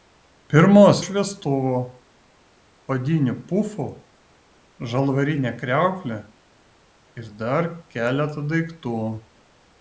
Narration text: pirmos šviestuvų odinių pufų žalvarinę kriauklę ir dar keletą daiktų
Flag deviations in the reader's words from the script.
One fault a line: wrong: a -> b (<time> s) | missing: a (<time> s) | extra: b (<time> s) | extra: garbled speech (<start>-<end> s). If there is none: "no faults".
no faults